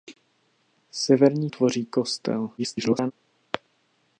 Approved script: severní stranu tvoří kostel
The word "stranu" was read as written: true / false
false